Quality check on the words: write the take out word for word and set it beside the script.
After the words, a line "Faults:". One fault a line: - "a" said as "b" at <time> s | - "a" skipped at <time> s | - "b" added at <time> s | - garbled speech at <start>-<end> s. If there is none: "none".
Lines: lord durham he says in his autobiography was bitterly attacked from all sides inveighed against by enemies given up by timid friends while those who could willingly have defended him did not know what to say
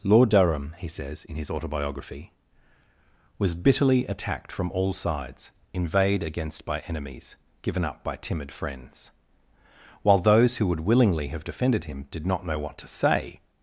lord durham he says in his autobiography was bitterly attacked from all sides inveighed against by enemies given up by timid friends while those who would willingly have defended him did not know what to say
Faults:
- "could" said as "would" at 10.7 s